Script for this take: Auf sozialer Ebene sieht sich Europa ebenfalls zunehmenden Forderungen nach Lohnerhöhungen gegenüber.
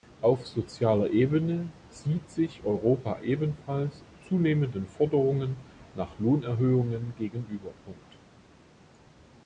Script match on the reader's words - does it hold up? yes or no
yes